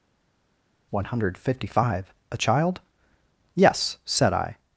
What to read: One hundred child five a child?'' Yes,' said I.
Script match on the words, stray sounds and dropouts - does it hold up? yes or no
no